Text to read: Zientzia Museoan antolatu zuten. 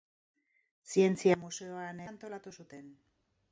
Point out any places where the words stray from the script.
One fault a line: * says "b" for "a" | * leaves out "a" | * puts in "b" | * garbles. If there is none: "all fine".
all fine